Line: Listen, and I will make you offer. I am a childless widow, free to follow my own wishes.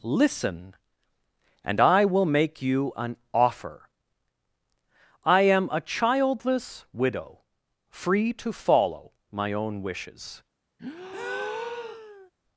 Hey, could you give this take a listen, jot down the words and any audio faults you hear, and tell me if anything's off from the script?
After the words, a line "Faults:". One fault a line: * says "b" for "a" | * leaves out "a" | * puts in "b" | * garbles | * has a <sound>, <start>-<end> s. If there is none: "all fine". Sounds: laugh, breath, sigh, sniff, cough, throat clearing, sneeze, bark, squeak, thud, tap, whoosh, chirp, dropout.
Listen, and I will make you an offer. I am a childless widow, free to follow my own wishes.
Faults:
* puts in "an"
* has a breath, 10.8-12.3 s